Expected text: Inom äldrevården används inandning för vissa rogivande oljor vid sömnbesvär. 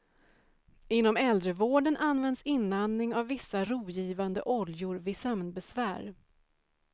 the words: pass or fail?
fail